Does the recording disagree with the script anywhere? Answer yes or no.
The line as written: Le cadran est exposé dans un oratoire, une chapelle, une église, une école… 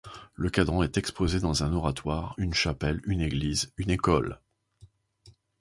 no